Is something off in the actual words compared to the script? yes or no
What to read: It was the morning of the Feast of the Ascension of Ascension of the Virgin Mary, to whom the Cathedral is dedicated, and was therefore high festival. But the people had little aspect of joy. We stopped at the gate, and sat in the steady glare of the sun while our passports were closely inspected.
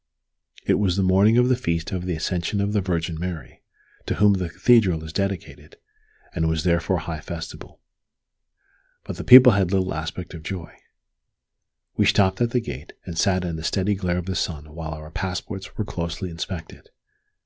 yes